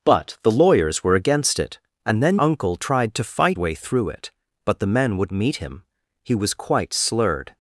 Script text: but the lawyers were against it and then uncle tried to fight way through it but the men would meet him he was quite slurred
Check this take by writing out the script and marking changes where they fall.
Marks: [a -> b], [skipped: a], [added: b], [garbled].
but the lawyers were against it and then uncle tried to fight way through it but the men would meet him he was quite slurred